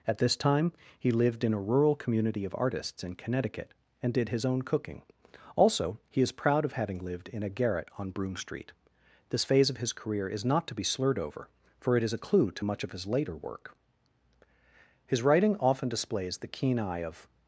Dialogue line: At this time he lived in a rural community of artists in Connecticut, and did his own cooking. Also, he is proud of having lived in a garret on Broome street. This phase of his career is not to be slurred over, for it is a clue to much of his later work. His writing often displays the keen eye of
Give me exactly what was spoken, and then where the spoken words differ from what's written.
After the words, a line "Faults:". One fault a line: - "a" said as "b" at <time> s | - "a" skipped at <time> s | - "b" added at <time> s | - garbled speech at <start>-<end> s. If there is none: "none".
At this time he lived in a rural community of artists in Connecticut, and did his own cooking. Also, he is proud of having lived in a garret on Broome street. This phase of his career is not to be slurred over, for it is a clue to much of his later work. His writing often displays the keen eye of
Faults:
none